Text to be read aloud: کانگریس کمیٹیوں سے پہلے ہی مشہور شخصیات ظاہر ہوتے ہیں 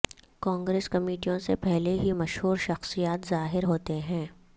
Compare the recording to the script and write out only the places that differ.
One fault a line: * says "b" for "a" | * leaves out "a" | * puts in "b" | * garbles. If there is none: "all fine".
all fine